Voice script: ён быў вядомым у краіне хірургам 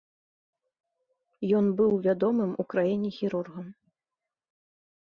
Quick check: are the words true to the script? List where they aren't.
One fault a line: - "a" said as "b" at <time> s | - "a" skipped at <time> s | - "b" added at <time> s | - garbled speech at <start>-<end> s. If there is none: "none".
none